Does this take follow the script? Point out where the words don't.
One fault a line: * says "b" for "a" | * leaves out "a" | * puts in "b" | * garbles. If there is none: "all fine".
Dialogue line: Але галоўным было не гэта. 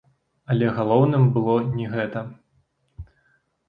all fine